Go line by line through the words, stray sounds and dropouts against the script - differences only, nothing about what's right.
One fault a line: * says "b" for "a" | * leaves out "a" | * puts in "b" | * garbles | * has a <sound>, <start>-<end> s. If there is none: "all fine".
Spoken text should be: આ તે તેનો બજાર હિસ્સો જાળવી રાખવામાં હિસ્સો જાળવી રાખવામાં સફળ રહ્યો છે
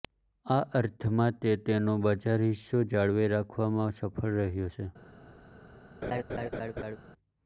* puts in "અર્થમાં"
* leaves out "હિસ્સો જાળવી રાખવામાં"
* has a laugh, 6.0-7.0 s